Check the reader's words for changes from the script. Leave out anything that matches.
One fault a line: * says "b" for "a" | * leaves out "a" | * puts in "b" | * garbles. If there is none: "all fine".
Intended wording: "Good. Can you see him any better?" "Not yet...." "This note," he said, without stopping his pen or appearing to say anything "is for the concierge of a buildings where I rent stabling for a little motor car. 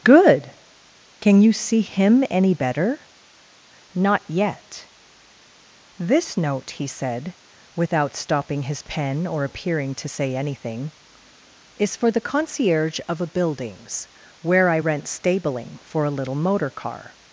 all fine